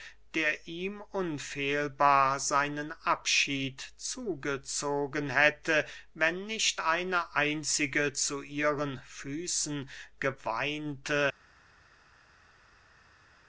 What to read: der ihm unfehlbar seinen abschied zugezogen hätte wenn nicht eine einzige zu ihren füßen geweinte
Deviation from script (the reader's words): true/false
false